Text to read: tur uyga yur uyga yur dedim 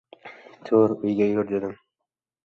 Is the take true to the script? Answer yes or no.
no